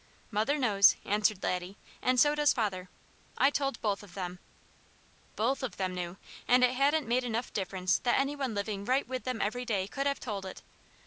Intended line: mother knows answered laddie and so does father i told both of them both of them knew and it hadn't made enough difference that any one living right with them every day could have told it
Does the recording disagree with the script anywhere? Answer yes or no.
no